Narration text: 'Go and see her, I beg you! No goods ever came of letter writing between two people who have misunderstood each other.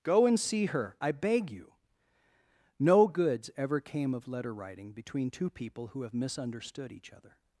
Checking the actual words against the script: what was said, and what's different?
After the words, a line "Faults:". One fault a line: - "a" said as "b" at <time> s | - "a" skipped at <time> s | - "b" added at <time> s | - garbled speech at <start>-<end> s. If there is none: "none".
'Go and see her, I beg you! No goods ever came of letter writing between two people who have misunderstood each other.
Faults:
none